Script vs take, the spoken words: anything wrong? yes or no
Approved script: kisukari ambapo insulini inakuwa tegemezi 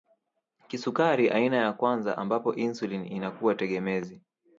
yes